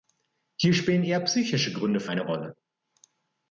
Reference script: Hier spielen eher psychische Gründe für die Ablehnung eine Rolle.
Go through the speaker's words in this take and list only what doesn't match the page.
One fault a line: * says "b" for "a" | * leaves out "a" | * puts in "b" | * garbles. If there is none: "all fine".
* leaves out "die Ablehnung"